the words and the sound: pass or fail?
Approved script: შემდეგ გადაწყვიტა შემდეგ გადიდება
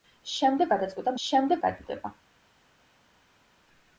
pass